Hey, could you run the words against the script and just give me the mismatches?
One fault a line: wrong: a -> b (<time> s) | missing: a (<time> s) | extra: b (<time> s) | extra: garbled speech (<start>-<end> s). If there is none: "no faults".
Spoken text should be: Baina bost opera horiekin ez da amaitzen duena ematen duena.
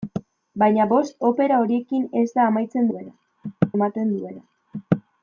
no faults